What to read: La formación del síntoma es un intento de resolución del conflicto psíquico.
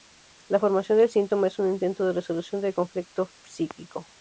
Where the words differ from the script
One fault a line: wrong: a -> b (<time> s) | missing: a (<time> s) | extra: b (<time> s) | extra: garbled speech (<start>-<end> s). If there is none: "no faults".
no faults